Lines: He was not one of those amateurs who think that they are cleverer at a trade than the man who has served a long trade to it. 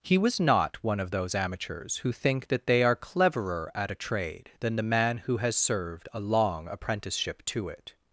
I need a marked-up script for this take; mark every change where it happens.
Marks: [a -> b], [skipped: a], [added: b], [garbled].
He was not one of those amateurs who think that they are cleverer at a trade than the man who has served a long [trade -> apprenticeship] to it.